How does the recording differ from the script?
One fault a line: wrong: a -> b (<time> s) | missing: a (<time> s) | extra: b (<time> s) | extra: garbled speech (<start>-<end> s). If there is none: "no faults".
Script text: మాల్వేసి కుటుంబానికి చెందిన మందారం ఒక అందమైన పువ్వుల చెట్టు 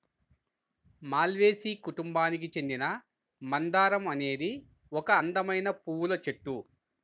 extra: అనేది (4.1 s)